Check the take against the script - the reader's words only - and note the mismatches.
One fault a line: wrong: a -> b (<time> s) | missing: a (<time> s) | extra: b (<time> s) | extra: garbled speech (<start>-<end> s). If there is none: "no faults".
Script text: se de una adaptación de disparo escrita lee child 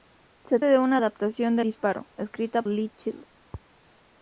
no faults